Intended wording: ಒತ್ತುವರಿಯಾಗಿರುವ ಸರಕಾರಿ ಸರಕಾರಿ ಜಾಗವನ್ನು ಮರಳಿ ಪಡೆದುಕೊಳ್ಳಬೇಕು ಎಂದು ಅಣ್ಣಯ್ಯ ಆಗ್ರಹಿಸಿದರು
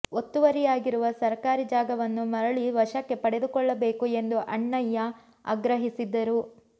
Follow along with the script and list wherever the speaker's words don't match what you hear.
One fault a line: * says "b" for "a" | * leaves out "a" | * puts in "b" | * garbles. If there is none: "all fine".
* leaves out "ಸರಕಾರಿ"
* puts in "ವಶಕ್ಕೆ"